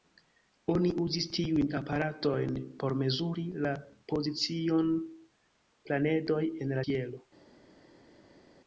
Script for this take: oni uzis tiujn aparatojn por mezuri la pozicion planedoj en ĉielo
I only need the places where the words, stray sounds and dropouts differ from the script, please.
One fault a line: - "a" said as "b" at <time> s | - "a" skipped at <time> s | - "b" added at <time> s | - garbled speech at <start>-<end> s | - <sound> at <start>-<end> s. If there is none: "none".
none